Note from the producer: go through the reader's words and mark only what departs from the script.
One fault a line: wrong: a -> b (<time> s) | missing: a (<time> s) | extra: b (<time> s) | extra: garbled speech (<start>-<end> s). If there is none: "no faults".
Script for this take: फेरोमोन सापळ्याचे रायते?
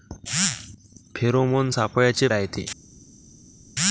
no faults